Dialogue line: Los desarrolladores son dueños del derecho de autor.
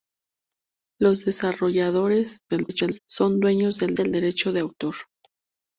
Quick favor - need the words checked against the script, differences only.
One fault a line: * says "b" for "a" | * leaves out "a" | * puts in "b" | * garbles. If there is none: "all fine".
* garbles
* puts in "del"